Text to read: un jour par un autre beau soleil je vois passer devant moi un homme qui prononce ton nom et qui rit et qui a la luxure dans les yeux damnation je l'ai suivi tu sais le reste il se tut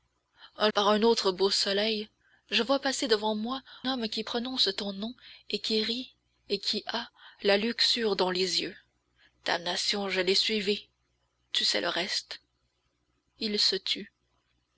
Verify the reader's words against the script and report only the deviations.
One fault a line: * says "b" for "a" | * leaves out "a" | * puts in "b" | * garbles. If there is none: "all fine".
* leaves out "jour"
* leaves out "un"